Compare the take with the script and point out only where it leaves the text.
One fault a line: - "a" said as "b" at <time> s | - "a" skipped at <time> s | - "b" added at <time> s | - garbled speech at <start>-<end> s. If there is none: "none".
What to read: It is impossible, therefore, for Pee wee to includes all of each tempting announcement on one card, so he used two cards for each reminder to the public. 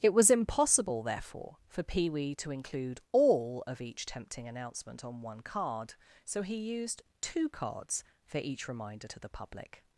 - "is" said as "was" at 0.1 s
- "includes" said as "include" at 2.5 s